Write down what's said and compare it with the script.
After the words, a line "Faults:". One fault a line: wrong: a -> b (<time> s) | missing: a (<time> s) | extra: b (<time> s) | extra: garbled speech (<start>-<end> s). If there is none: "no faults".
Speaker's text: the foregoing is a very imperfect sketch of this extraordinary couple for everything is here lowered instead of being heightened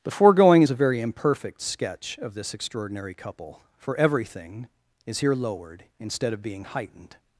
the foregoing is a very imperfect sketch of this extraordinary couple for everything is here lowered instead of being heightened
Faults:
no faults